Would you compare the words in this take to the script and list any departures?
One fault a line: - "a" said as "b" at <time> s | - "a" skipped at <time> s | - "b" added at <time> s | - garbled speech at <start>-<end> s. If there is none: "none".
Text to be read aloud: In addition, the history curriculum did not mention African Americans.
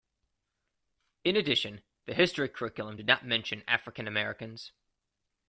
none